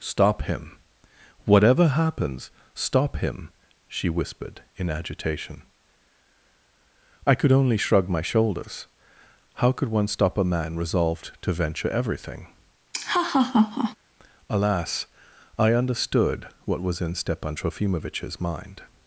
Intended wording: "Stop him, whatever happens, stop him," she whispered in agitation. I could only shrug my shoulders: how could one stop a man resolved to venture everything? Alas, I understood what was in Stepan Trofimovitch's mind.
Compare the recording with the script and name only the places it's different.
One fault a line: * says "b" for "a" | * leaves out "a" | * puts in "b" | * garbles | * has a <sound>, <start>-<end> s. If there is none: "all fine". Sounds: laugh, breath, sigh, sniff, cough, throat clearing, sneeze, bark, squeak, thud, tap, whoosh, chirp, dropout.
* has a laugh, 12.9-14.0 s